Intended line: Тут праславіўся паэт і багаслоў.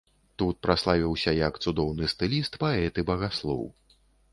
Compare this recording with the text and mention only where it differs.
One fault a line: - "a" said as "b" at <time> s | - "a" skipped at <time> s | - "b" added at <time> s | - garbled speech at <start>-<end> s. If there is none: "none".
- "як цудоўны стыліст" added at 1.4 s